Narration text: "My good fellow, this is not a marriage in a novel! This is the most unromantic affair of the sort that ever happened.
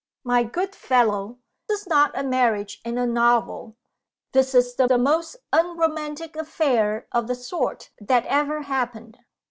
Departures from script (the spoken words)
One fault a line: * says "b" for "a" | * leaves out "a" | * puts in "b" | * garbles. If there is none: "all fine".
* leaves out "this"
* puts in "the"